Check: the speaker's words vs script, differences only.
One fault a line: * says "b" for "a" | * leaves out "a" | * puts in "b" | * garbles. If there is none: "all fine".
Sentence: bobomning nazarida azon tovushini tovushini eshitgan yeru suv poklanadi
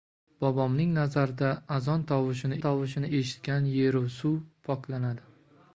all fine